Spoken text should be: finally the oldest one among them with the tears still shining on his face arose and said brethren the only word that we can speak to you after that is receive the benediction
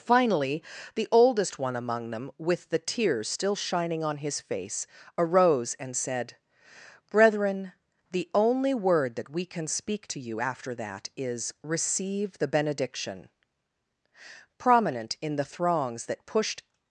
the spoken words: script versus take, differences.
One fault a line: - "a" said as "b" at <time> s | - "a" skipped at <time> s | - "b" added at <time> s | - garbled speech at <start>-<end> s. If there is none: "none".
- "prominent in the throngs that pushed" added at 14.6 s